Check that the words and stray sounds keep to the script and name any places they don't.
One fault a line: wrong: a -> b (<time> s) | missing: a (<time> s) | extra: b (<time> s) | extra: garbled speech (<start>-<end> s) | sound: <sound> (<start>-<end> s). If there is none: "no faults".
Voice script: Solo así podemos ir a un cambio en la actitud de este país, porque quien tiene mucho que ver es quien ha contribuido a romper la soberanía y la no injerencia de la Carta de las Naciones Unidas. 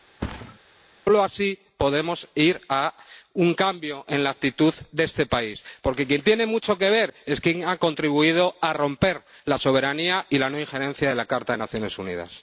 sound: thud (0.2-0.6 s)